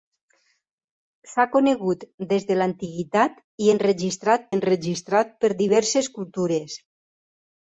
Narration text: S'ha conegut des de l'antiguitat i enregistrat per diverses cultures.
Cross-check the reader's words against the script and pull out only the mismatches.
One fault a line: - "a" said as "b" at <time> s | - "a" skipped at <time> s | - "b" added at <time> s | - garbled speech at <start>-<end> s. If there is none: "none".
- "enregistrat" added at 4.5 s